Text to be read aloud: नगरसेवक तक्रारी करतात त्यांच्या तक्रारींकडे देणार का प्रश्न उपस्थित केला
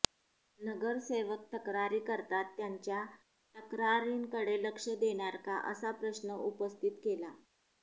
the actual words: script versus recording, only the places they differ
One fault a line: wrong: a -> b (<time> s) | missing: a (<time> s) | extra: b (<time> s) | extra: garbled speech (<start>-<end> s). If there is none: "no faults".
extra: लक्ष (4.6 s)
extra: असा (5.7 s)